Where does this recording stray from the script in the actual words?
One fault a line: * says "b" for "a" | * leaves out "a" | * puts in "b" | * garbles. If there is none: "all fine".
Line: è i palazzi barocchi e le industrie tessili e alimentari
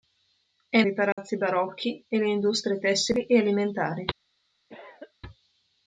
all fine